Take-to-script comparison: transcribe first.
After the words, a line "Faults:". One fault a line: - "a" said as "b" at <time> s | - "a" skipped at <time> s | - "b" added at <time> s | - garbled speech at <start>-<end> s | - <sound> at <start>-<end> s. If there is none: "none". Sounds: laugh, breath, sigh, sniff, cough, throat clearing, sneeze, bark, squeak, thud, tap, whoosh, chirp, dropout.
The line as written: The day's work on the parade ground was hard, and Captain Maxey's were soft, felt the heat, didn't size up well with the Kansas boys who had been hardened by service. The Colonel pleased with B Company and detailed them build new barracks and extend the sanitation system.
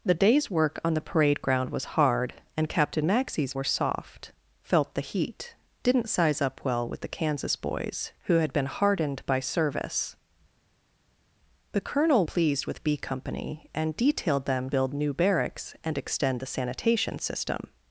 The day's work on the parade ground was hard, and Captain Maxey's were soft, felt the heat, didn't size up well with the Kansas boys who had been hardened by service. The Colonel pleased with B Company and detailed them build new barracks and extend the sanitation system.
Faults:
none